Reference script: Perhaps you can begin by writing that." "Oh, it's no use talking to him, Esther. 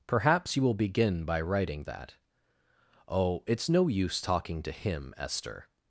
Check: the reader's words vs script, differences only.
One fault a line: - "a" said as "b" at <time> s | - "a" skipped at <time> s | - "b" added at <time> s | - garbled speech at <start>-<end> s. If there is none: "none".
- "can" said as "will" at 0.6 s